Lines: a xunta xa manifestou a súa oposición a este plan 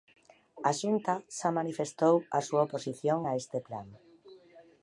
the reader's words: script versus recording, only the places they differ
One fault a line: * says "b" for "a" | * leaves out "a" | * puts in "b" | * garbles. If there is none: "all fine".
all fine